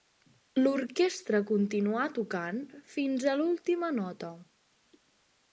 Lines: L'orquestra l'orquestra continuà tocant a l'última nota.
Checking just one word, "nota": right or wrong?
right